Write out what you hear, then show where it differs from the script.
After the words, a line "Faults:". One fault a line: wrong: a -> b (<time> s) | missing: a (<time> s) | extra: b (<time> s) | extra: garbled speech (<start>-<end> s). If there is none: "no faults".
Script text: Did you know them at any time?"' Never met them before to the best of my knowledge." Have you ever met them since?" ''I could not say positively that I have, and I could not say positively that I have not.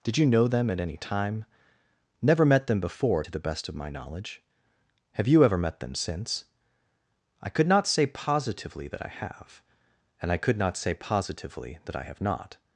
Did you know them at any time?"' Never met them before to the best of my knowledge." Have you ever met them since?" ''I could not say positively that I have, and I could not say positively that I have not.
Faults:
no faults